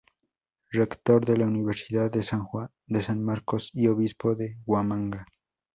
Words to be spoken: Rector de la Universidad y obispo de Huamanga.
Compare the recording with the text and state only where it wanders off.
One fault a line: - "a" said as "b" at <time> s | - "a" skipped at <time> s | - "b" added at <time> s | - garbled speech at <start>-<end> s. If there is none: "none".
- "de San Marcos" added at 2.1 s